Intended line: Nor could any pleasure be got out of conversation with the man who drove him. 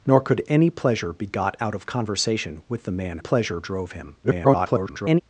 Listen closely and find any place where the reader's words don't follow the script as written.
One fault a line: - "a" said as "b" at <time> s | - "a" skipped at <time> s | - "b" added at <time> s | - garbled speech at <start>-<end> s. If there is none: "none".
- "who" said as "pleasure" at 3.2 s
- garbled speech at 4.2-5.2 s